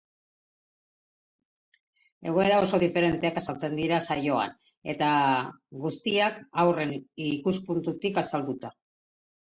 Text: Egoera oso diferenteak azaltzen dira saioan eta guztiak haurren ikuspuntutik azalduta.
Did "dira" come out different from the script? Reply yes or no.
no